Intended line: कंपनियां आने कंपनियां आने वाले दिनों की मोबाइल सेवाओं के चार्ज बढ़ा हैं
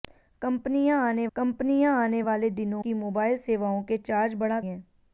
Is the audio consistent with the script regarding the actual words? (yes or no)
yes